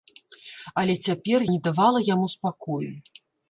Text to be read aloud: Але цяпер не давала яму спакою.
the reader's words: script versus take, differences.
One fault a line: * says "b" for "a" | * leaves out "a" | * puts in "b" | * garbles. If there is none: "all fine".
all fine